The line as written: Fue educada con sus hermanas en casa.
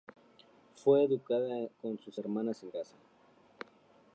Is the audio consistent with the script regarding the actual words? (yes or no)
yes